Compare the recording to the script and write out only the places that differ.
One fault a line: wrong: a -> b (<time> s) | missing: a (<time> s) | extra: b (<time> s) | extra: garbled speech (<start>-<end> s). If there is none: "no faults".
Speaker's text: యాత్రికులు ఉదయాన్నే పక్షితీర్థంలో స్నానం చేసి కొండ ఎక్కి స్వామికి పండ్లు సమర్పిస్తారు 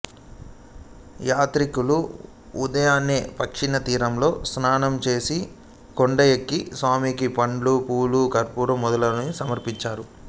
extra: పూలు కర్పూరం మొదలైనవి (7.9 s)